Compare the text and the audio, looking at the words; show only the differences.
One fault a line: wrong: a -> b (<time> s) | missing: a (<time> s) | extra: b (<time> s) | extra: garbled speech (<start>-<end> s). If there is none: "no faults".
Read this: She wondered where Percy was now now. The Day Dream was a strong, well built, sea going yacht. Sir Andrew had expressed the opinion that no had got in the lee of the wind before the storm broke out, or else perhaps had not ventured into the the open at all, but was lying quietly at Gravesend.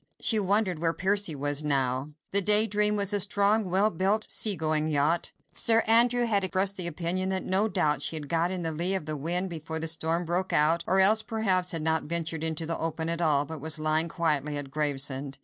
missing: now (2.1 s)
extra: doubt she (7.7 s)
missing: the (12.8 s)